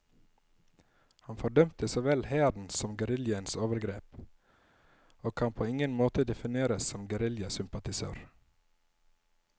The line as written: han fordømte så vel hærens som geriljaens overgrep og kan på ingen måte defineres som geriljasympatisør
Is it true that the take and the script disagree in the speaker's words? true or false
false